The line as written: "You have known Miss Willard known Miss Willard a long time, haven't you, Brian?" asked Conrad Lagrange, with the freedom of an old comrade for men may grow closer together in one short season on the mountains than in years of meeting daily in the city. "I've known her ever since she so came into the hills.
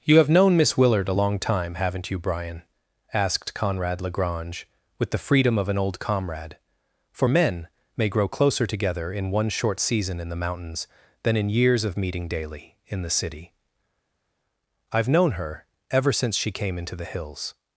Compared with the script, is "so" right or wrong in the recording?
wrong